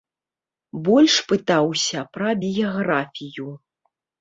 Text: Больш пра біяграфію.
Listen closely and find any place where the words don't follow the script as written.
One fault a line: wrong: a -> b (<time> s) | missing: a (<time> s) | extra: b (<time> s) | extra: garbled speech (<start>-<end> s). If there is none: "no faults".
extra: пытаўся (1.3 s)